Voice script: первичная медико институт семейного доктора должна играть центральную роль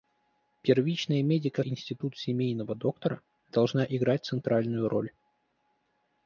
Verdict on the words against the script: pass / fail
pass